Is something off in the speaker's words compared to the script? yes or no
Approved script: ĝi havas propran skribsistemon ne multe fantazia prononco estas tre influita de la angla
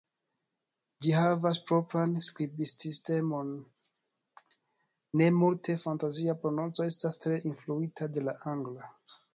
no